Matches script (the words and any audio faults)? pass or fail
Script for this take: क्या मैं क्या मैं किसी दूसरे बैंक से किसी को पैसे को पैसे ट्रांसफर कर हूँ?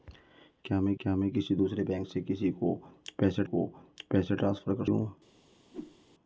fail